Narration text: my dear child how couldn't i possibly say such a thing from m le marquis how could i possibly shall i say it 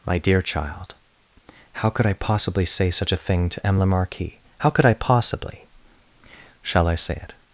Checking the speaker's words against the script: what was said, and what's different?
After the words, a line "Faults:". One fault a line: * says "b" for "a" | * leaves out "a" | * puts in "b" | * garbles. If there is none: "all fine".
my dear child how could i possibly say such a thing to m le marquis how could i possibly shall i say it
Faults:
* says "could" for "couldn't"
* says "to" for "from"